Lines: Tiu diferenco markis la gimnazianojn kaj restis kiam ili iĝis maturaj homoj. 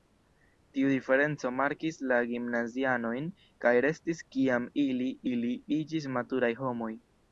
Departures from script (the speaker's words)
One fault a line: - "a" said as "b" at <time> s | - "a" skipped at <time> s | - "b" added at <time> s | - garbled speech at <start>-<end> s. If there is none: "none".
- "ili" added at 5.3 s